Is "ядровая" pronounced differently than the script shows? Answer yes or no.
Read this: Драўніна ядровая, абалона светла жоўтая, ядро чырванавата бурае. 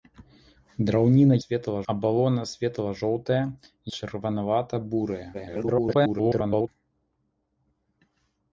yes